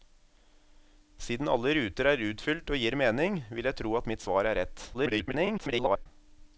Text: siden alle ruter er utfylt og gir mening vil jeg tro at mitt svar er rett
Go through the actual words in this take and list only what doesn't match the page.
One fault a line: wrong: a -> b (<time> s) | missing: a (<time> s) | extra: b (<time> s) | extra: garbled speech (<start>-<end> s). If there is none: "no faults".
extra: garbled speech (4.9-6.1 s)